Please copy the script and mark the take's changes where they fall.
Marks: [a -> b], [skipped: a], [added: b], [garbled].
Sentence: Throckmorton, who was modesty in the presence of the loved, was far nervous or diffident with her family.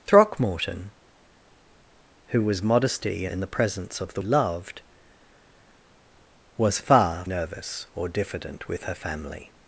Throckmorton, who was modesty in the presence of the loved, was far nervous or diffident with her family.